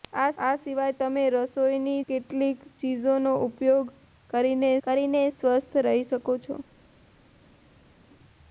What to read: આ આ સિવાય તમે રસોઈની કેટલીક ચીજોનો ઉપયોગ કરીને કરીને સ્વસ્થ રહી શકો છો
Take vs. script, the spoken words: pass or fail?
pass